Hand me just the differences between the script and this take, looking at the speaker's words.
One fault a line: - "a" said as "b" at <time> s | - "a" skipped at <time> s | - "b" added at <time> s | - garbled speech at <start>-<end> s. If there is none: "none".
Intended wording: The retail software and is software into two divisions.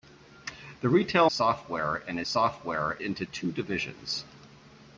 none